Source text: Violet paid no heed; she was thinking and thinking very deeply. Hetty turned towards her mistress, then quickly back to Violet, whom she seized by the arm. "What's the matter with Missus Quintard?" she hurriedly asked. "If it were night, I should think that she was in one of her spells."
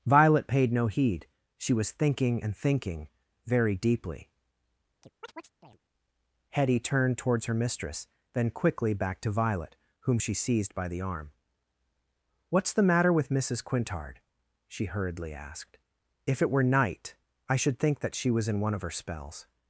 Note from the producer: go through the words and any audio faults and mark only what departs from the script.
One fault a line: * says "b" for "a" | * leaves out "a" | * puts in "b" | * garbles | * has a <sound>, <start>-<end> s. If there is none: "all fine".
* has a chirp, 5.0-5.8 s